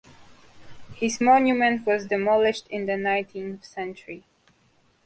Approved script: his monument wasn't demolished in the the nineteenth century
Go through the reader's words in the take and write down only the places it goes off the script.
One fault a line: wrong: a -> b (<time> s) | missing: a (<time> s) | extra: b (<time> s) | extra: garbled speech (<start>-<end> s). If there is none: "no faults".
wrong: wasn't -> was (1.9 s)
missing: the (3.0 s)